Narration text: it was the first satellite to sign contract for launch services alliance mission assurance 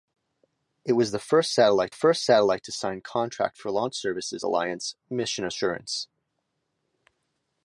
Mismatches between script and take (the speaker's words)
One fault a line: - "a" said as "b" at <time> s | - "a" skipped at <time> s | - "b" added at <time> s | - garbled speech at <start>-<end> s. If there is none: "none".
- "first satellite" added at 1.9 s